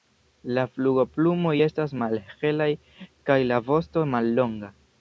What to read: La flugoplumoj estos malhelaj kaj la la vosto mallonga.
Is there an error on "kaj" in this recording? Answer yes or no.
no